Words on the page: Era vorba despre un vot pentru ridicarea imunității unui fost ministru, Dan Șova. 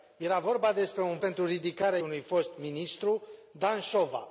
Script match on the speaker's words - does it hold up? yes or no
no